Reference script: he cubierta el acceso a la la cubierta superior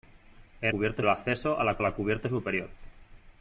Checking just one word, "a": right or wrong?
right